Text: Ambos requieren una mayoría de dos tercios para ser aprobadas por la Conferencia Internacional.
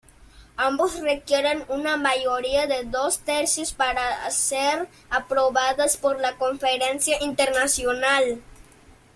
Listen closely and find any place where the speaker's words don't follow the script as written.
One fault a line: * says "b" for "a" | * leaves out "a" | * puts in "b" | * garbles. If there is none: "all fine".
all fine